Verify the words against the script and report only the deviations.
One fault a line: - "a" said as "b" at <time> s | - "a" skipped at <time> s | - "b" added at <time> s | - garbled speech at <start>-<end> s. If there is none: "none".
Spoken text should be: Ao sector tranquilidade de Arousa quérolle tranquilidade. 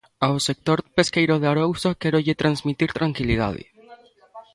- "tranquilidade" said as "pesqueiro" at 0.9 s
- "transmitir" added at 2.4 s